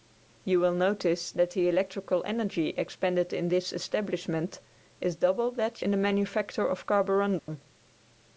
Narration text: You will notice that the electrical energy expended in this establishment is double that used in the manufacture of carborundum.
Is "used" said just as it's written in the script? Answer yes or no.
no